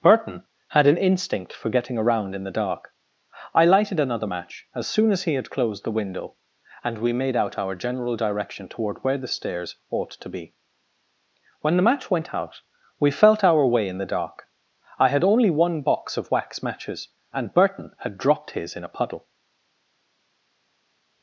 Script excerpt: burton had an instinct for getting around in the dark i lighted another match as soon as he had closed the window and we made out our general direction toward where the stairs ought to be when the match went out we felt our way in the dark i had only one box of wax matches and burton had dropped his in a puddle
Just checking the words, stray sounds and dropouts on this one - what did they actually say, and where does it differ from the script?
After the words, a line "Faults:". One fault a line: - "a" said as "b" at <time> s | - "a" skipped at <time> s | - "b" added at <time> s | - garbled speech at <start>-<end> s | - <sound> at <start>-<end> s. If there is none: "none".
burton had an instinct for getting around in the dark i lighted another match as soon as he had closed the window and we made out our general direction toward where the stairs ought to be when the match went out we felt our way in the dark i had only one box of wax matches and burton had dropped his in a puddle
Faults:
none